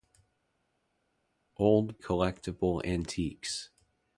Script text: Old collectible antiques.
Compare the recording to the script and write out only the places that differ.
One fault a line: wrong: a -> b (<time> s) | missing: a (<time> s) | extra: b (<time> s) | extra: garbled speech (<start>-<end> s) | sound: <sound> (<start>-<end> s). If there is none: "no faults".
no faults